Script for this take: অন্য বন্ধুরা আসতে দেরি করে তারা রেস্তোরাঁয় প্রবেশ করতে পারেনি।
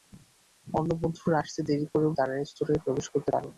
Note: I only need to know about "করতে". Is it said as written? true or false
true